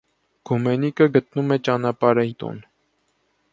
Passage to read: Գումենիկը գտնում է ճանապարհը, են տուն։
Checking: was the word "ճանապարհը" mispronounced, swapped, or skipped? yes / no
no